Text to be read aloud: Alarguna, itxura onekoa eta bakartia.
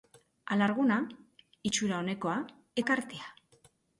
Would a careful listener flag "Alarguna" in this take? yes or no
no